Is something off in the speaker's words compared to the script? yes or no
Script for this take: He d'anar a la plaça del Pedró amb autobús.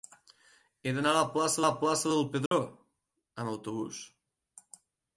yes